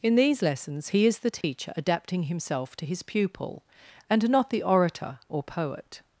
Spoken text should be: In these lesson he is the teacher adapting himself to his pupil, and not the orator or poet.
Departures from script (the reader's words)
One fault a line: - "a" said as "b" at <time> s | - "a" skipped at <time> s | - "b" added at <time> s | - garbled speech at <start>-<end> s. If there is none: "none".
- "lesson" said as "lessons" at 0.4 s